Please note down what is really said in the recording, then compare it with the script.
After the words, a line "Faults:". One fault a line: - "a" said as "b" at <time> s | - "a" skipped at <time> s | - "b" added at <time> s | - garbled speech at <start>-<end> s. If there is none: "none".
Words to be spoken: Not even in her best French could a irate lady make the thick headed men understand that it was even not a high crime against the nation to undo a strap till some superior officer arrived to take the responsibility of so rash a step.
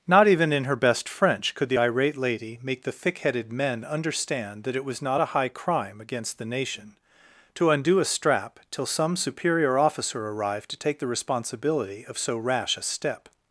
Not even in her best French could the irate lady make the thick headed men understand that it was not a high crime against the nation to undo a strap till some superior officer arrived to take the responsibility of so rash a step.
Faults:
- "a" said as "the" at 1.7 s
- "even" skipped at 5.0 s